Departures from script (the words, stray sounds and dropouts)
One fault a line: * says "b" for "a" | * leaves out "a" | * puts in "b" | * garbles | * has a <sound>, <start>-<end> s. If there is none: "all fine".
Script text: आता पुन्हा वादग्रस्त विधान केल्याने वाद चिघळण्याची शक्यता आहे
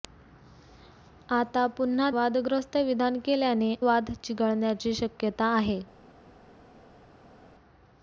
all fine